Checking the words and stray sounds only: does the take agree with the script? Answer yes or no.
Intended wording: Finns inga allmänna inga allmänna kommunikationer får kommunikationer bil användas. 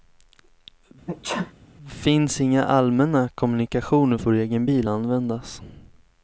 no